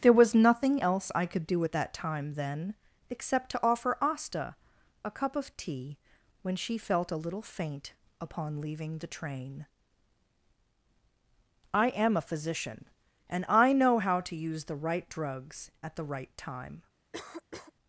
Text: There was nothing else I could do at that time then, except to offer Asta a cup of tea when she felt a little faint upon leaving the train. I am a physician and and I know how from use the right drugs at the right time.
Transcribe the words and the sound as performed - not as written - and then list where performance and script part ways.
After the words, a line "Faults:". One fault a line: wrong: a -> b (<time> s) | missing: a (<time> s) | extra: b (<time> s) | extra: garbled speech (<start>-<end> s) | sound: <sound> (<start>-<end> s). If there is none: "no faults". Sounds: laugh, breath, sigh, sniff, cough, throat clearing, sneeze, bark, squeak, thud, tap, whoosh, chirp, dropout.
There was nothing else I could do at that time then, except to offer Asta a cup of tea when she felt a little faint upon leaving the train. I am a physician and I know how to use the right drugs at the right time.
Faults:
missing: and (13.4 s)
wrong: from -> to (14.2 s)
sound: cough (17.1-17.7 s)